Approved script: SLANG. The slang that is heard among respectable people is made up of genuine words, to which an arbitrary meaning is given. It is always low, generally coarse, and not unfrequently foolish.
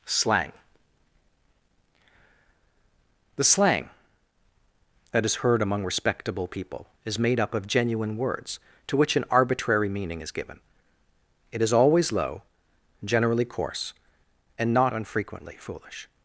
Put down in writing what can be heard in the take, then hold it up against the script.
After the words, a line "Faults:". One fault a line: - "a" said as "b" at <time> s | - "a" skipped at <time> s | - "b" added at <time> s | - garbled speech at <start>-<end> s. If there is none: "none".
SLANG. The slang that is heard among respectable people is made up of genuine words, to which an arbitrary meaning is given. It is always low, generally coarse, and not unfrequently foolish.
Faults:
none